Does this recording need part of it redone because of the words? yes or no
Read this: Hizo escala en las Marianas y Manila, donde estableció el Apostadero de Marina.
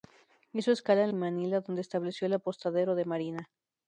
yes